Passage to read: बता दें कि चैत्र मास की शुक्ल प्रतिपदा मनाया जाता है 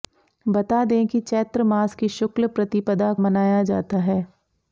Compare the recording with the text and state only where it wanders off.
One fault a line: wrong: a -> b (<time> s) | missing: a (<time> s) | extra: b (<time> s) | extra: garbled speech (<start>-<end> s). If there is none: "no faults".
no faults